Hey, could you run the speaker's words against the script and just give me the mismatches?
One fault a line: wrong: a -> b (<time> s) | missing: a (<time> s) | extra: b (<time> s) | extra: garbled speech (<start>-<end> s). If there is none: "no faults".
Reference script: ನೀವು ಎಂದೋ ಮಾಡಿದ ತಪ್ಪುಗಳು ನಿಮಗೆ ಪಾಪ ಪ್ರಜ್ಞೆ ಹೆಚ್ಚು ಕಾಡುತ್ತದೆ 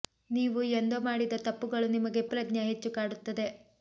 missing: ಪಾಪ (2.2 s)